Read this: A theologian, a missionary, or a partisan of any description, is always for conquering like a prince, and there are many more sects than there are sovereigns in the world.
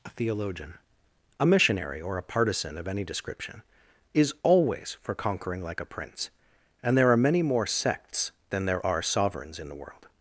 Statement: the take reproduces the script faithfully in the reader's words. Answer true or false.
true